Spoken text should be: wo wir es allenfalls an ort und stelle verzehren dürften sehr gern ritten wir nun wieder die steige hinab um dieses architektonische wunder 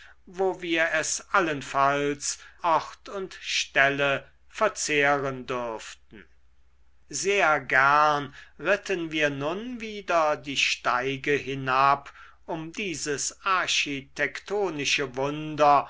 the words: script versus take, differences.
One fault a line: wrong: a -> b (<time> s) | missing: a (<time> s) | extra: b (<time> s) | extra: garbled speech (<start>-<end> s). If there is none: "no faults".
missing: an (2.4 s)